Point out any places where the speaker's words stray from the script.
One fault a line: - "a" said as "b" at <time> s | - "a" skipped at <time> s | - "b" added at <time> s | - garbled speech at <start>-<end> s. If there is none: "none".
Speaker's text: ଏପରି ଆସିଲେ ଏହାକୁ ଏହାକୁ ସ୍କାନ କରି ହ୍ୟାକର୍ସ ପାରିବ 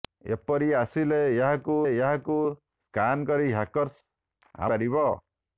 none